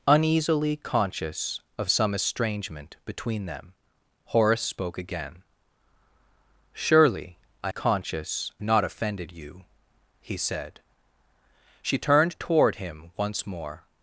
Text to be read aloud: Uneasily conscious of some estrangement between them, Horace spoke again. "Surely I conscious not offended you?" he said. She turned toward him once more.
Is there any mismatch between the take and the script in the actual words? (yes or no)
no